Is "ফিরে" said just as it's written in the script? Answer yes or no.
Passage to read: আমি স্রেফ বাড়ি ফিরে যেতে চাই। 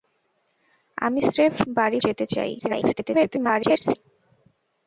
no